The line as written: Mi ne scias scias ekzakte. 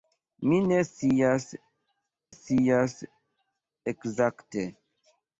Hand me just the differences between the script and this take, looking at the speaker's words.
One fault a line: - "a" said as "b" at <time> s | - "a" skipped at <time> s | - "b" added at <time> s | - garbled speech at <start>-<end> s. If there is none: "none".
none